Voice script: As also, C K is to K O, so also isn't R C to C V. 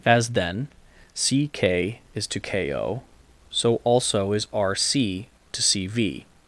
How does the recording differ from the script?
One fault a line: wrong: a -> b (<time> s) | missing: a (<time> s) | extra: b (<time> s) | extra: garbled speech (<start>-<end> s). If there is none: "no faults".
wrong: also -> then (0.3 s)
wrong: isn't -> is (4.3 s)